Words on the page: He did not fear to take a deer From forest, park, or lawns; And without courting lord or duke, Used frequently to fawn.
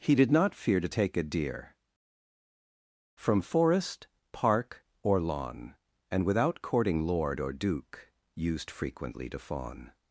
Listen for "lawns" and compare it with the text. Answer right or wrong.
wrong